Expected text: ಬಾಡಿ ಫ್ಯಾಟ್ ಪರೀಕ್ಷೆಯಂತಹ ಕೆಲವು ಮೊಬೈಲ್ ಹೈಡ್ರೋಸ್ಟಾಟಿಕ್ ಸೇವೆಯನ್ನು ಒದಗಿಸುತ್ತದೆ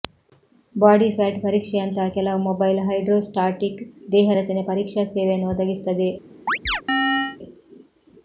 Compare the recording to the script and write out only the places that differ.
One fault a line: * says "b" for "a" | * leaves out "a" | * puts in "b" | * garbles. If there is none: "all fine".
* puts in "ದೇಹ ರಚನೆ ಪರೀಕ್ಷಾ"